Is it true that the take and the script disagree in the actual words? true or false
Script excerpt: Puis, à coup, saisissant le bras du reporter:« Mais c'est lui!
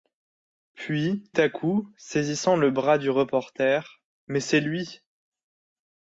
false